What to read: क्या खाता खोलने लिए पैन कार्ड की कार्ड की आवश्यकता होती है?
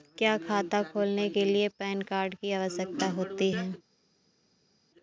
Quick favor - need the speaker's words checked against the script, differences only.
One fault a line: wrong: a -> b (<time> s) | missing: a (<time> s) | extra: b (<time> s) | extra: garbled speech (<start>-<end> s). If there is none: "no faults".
extra: के (1.3 s)
missing: कार्ड की (2.5 s)